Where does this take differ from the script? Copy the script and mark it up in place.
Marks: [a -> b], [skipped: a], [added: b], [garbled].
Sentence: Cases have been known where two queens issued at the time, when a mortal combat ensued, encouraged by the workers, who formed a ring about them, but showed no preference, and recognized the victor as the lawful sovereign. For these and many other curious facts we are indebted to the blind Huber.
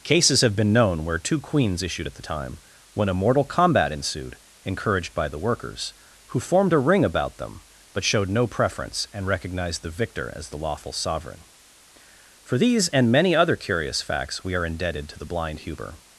Cases have been known where two queens issued at the time, when a mortal combat ensued, encouraged by the workers, who formed a ring about them, but showed no preference, and recognized the victor as the lawful sovereign. For these and many other curious facts we are indebted to the blind Huber.